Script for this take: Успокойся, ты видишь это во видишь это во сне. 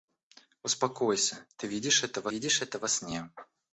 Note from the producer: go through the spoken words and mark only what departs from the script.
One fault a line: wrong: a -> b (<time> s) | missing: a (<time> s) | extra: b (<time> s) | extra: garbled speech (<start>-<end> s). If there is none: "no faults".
no faults